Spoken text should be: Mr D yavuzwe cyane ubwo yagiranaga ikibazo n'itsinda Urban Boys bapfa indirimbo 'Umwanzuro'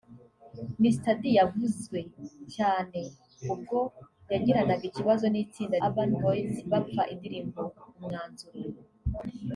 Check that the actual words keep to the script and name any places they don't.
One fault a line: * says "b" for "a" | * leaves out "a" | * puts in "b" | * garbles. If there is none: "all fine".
all fine